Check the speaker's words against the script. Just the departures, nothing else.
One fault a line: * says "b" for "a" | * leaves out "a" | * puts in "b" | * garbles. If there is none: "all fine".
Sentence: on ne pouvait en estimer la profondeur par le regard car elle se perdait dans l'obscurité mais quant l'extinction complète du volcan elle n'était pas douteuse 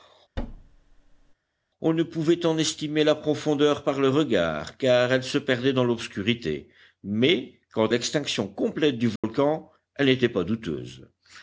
all fine